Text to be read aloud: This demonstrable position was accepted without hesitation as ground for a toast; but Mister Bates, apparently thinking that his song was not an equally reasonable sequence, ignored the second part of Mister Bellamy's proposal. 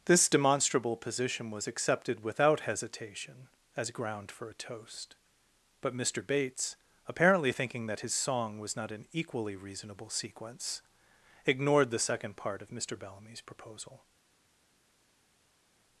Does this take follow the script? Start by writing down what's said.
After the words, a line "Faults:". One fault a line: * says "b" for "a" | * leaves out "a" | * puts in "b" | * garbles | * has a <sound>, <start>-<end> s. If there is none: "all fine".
This demonstrable position was accepted without hesitation as ground for a toast; but Mister Bates, apparently thinking that his song was not an equally reasonable sequence, ignored the second part of Mister Bellamy's proposal.
Faults:
all fine